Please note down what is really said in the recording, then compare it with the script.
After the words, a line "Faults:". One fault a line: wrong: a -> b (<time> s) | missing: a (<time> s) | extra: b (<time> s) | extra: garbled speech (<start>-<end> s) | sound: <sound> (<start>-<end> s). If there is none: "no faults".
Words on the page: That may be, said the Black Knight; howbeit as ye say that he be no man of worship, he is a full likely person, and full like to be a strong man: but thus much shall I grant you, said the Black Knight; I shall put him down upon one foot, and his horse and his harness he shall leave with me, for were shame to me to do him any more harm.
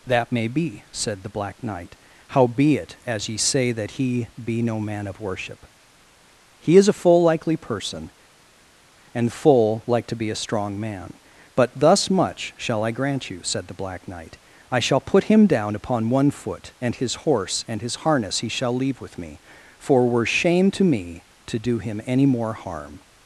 That may be, said the Black Knight; howbeit as ye say that he be no man of worship, he is a full likely person, and full like to be a strong man: but thus much shall I grant you, said the Black Knight; I shall put him down upon one foot, and his horse and his harness he shall leave with me, for were shame to me to do him any more harm.
Faults:
no faults